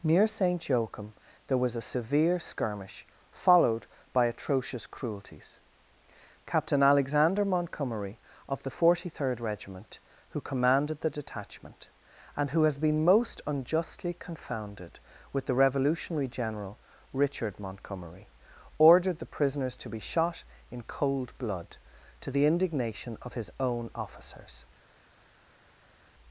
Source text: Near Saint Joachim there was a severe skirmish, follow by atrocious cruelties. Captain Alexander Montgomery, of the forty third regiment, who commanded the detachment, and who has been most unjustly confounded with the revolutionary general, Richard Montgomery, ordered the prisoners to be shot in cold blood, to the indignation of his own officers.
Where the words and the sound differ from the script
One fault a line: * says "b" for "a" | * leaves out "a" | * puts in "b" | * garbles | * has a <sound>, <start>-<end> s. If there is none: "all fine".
* says "followed" for "follow"